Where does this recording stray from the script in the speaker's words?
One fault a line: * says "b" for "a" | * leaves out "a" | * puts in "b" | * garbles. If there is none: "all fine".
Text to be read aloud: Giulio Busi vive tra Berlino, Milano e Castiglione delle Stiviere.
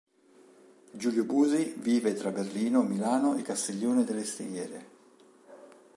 all fine